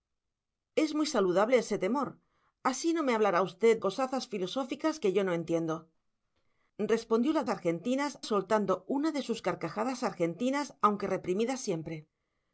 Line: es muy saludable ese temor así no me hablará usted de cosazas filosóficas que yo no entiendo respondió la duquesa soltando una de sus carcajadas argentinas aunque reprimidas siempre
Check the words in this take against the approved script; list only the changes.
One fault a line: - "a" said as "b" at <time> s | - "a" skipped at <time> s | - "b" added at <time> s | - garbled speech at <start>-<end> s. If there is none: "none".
- "de" skipped at 3.8 s
- "duquesa" said as "argentinas" at 7.5 s